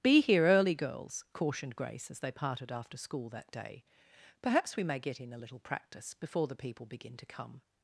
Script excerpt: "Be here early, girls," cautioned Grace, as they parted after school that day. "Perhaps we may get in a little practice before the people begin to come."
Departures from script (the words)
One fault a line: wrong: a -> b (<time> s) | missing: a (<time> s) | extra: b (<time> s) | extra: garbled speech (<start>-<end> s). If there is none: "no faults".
no faults